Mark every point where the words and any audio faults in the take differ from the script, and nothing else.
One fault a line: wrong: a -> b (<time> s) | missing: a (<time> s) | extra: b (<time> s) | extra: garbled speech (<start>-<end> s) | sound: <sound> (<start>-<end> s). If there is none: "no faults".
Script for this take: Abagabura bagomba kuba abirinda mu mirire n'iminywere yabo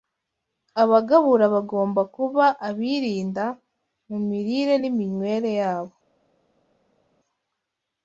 no faults